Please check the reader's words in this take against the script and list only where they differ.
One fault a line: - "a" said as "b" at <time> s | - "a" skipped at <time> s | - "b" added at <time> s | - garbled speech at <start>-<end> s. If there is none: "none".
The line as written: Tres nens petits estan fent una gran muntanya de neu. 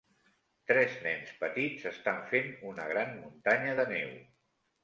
none